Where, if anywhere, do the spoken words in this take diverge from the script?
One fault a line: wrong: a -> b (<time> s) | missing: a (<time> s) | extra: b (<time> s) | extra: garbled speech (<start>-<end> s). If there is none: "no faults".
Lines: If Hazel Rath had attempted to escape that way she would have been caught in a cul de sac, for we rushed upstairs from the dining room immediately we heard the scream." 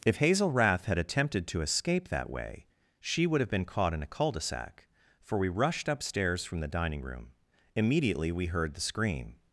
no faults